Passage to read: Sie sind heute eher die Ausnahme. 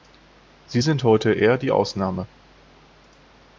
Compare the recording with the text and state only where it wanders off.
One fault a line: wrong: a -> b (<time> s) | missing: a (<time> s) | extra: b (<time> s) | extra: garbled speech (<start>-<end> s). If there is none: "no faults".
no faults